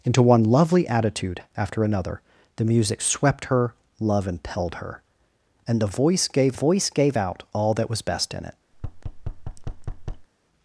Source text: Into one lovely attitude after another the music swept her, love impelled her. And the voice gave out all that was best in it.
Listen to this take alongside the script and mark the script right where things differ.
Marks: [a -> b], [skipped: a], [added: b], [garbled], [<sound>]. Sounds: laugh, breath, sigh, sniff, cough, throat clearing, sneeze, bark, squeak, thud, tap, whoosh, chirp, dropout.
Into one lovely attitude after another the music swept her, love impelled her. And the voice gave [added: voice gave] out all that was best in it. [thud]